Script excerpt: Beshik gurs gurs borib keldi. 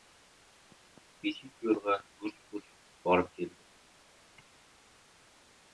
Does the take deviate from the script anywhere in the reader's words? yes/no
yes